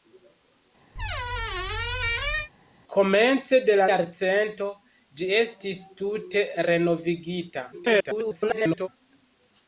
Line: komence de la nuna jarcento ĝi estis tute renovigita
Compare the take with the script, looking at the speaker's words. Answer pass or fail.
fail